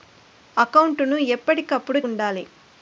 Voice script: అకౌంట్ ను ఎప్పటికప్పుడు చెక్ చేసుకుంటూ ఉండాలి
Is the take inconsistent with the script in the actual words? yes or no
yes